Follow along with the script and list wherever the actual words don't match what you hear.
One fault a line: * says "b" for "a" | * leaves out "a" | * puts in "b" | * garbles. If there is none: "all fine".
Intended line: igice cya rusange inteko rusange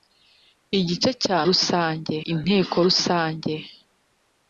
all fine